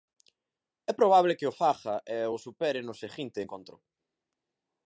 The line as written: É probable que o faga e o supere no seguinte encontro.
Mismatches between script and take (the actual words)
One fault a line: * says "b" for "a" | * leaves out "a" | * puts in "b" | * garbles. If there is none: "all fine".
all fine